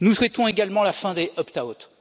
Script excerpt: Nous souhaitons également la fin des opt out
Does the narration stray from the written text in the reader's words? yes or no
no